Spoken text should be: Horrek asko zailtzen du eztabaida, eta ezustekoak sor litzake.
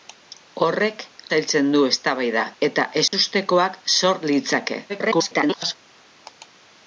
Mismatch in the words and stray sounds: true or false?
true